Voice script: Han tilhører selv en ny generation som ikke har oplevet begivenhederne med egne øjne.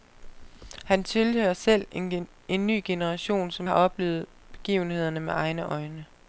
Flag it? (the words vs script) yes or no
yes